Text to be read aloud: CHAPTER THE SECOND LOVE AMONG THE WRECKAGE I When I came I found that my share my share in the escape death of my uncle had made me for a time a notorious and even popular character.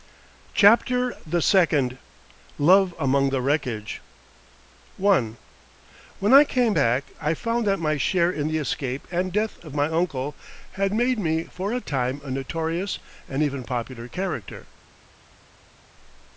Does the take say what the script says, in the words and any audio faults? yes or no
no